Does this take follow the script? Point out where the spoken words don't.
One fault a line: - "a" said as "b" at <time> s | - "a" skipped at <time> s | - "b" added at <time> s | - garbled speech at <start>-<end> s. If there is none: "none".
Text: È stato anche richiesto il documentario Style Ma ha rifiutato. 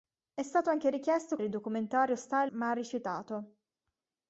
none